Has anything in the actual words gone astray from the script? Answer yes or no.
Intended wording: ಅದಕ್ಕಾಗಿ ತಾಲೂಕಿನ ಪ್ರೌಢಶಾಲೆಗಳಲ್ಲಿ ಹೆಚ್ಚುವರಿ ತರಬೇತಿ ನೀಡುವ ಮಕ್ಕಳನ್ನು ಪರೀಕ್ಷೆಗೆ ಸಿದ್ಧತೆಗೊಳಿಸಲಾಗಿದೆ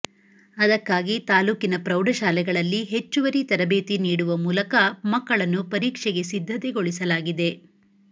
yes